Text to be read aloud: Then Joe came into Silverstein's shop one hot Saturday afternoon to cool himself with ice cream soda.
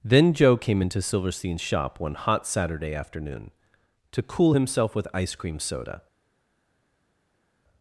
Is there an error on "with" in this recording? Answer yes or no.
no